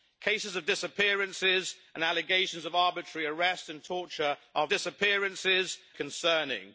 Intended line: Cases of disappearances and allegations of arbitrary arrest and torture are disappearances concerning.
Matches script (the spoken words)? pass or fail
pass